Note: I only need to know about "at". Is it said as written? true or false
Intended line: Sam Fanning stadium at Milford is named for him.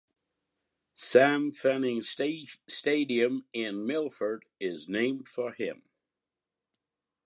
false